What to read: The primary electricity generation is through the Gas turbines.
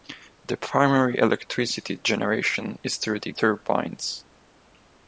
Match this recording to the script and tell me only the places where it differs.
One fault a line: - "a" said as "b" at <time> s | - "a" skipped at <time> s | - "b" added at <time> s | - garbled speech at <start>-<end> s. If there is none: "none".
- "Gas" skipped at 3.3 s